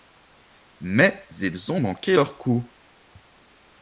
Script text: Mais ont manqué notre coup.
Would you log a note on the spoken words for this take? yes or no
yes